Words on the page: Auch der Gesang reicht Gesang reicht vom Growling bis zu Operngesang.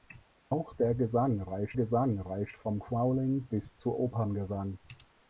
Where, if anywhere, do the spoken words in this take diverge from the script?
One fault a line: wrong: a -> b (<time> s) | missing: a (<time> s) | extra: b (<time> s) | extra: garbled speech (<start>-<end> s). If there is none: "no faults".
no faults